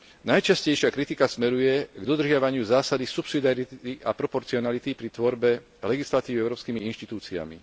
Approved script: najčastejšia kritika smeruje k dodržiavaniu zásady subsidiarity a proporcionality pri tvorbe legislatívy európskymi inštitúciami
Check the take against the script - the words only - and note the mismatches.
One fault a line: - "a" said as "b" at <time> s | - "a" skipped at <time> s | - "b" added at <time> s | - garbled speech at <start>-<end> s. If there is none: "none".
none